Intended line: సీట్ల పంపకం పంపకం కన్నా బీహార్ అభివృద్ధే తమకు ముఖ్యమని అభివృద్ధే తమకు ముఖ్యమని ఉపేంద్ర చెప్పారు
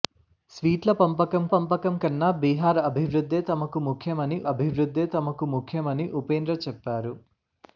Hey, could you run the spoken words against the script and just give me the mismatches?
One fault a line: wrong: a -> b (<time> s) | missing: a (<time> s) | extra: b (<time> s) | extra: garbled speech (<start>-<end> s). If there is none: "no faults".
no faults